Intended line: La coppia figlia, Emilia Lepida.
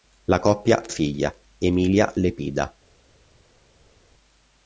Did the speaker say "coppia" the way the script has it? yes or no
yes